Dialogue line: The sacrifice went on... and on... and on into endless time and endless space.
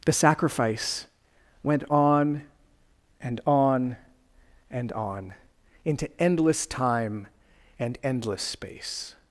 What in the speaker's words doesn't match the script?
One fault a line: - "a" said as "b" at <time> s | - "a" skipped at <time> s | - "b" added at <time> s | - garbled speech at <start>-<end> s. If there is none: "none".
none